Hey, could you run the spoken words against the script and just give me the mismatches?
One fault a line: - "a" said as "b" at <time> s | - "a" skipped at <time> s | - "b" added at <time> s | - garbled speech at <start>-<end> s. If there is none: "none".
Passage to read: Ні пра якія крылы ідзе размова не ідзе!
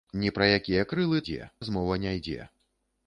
none